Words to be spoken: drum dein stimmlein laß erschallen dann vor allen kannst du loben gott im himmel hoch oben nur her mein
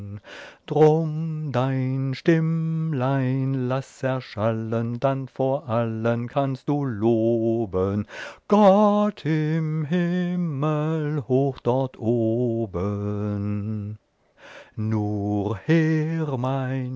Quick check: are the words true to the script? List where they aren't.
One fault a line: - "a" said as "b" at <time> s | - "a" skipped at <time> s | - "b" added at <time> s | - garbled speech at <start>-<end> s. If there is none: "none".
- "dort" added at 11.6 s